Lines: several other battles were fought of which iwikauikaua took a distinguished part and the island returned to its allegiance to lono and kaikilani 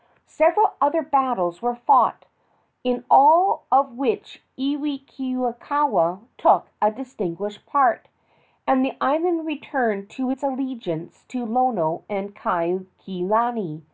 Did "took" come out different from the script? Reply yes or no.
no